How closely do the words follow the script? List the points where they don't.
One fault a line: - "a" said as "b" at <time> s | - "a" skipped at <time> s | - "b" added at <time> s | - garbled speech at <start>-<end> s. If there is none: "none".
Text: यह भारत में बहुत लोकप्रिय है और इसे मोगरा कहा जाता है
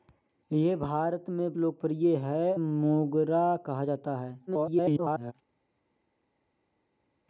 - "बहुत" skipped at 1.5 s
- "और इसे" skipped at 2.5 s
- garbled speech at 4.5-5.3 s